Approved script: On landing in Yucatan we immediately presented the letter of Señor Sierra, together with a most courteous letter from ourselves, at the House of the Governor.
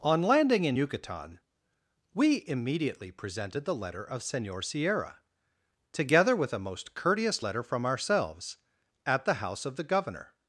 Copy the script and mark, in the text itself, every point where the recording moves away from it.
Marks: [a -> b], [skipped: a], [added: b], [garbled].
On landing in Yucatan we immediately presented the letter of Señor Sierra, together with a most courteous letter from ourselves, at the House of the Governor.